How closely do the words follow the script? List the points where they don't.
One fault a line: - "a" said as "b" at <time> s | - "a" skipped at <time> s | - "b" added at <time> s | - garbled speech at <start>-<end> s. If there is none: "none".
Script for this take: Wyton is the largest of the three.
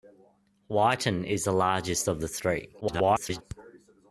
- garbled speech at 2.8-3.4 s